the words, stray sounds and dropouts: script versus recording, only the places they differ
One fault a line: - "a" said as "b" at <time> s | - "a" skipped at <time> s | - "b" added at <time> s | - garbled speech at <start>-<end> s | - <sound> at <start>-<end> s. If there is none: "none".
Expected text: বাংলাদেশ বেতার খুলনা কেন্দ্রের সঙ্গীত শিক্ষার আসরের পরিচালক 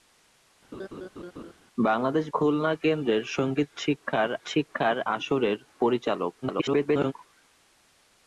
- laugh at 0.7-1.5 s
- "বেতার" skipped at 2.2 s
- "শিক্ষার" added at 4.5 s
- garbled speech at 6.4-7.1 s